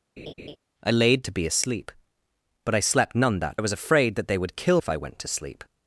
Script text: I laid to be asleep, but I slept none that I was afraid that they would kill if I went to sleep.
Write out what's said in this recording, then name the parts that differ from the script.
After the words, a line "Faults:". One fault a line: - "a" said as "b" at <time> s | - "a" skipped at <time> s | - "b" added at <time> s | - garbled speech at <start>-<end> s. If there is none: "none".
I laid to be asleep, but I slept none that I was afraid that they would kill if I went to sleep.
Faults:
none